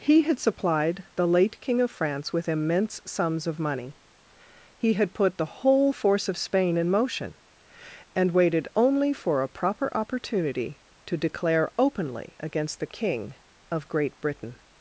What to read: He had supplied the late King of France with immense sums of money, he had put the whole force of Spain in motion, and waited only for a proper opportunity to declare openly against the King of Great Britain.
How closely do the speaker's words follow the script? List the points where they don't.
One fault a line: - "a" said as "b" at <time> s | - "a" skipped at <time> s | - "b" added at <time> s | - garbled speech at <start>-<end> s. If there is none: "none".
none